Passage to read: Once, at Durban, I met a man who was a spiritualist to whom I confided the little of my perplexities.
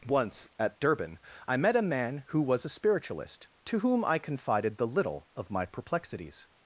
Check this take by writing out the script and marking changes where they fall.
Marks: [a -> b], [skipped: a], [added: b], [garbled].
Once, at Durban, I met a man who was a spiritualist to whom I confided the little of my perplexities.